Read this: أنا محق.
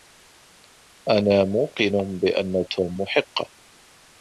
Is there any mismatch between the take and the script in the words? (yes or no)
yes